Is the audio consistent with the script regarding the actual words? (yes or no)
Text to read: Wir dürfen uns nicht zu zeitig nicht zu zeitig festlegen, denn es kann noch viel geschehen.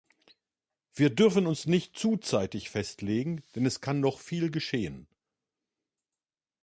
no